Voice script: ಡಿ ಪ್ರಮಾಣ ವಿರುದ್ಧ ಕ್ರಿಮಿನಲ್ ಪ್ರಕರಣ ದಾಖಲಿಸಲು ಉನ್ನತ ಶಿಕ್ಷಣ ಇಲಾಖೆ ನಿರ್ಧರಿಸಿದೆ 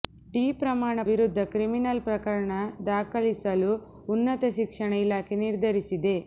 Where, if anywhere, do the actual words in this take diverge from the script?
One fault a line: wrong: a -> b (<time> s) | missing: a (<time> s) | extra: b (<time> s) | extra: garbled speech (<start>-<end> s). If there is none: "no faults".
no faults